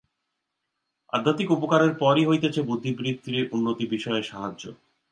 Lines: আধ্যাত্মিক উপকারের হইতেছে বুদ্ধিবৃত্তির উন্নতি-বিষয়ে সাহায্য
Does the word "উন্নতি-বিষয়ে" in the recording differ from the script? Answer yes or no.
no